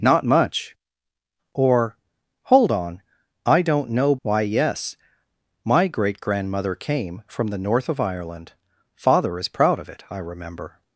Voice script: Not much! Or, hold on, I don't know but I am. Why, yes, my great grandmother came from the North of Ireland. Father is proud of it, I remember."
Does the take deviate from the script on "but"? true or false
true